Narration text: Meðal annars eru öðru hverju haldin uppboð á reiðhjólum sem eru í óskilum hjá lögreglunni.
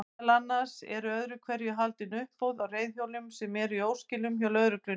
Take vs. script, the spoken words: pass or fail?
pass